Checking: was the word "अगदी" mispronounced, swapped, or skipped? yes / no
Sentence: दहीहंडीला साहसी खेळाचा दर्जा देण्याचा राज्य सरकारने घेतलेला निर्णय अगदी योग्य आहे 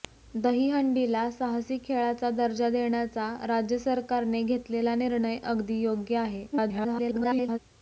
no